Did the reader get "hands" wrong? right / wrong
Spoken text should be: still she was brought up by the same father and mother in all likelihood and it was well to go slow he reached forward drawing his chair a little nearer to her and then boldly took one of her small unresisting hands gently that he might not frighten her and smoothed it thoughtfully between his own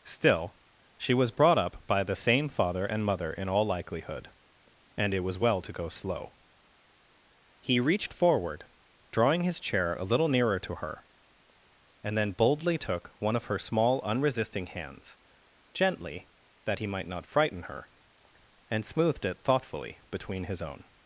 right